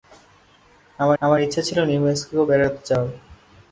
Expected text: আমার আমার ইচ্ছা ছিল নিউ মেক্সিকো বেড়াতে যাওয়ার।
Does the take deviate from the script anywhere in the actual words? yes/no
no